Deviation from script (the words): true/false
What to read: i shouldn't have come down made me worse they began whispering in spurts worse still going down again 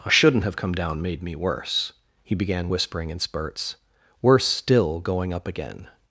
true